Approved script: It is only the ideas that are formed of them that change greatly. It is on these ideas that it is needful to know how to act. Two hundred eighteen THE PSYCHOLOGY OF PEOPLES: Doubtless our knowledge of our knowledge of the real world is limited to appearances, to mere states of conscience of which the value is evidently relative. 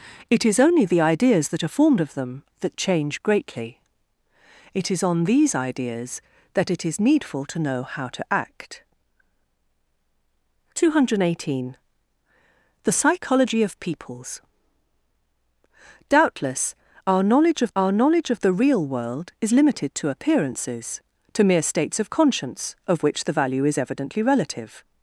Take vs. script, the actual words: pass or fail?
pass